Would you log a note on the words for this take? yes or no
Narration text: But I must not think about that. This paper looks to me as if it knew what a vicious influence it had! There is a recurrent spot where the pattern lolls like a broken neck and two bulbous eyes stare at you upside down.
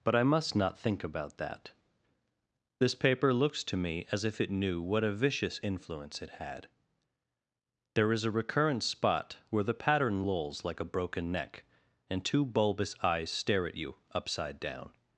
no